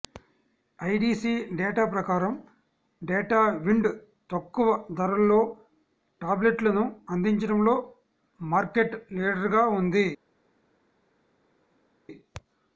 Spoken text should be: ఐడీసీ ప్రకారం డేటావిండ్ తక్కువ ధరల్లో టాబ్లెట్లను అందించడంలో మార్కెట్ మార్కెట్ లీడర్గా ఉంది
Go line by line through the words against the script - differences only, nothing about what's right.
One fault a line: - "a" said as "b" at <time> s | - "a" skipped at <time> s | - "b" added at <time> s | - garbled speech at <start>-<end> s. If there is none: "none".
- "డేటా" added at 1.6 s
- "మార్కెట్" skipped at 8.9 s